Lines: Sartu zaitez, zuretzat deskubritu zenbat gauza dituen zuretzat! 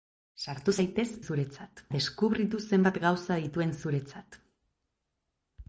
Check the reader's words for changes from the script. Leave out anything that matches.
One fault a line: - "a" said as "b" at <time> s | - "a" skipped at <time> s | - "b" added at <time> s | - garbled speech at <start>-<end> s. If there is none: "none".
none